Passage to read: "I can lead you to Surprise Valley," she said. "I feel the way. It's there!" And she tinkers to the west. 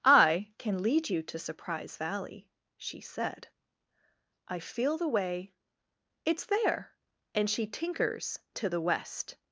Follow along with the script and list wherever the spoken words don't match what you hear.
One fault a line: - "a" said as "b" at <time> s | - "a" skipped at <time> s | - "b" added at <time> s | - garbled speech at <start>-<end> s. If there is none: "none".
none